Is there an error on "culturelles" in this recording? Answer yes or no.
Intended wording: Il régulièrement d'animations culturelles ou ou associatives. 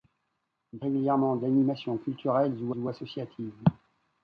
no